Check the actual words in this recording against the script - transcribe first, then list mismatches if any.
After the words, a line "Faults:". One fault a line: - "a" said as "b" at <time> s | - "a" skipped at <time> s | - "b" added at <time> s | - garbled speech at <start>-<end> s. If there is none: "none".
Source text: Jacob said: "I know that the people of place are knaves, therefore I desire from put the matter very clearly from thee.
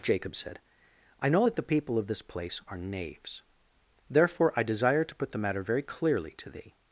Jacob said: "I know that the people of this place are knaves, therefore I desire to put the matter very clearly to thee.
Faults:
- "this" added at 2.1 s
- "from" said as "to" at 5.0 s
- "from" said as "to" at 6.3 s